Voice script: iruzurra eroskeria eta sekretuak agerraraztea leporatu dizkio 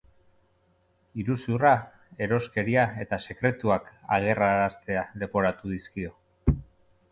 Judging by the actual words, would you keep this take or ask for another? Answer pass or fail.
pass